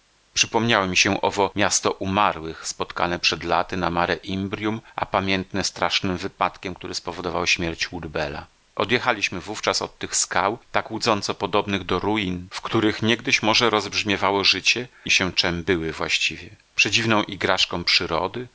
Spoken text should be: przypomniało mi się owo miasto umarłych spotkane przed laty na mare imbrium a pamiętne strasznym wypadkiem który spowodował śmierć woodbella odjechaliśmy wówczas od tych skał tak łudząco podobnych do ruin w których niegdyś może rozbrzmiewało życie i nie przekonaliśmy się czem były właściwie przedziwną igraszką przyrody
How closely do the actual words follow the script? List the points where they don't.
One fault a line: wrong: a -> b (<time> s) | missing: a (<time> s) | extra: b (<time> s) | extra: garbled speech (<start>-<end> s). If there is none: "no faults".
missing: nie przekonaliśmy (15.1 s)